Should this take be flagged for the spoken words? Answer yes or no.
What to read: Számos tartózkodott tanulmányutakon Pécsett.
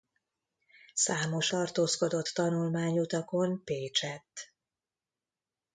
no